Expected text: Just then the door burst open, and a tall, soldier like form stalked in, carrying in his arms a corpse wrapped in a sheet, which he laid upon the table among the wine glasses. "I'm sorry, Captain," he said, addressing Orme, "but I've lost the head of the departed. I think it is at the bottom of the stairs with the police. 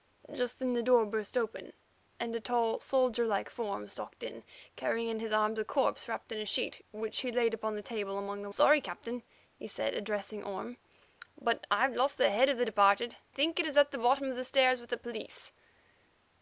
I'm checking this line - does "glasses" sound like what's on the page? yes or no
no